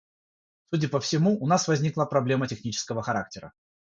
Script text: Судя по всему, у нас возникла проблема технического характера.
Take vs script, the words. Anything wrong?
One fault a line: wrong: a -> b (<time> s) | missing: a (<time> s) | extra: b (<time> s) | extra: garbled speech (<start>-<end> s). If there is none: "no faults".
no faults